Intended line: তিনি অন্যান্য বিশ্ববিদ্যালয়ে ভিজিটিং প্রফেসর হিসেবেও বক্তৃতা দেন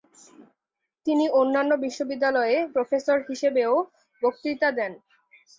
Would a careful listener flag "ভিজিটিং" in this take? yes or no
yes